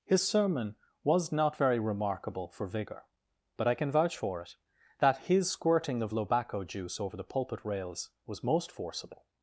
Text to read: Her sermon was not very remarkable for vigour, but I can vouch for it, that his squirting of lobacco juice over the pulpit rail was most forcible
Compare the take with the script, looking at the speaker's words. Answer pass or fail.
fail